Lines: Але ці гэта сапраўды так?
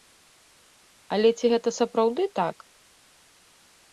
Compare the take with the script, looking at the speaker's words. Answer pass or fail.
pass